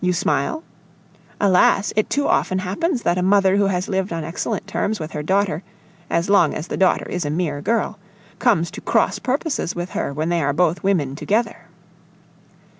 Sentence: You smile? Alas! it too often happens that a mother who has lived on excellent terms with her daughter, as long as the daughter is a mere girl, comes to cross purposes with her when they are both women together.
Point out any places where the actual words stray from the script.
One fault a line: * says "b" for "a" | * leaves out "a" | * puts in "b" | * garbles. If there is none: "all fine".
all fine